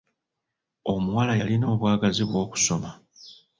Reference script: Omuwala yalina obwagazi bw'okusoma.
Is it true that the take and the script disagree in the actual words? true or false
false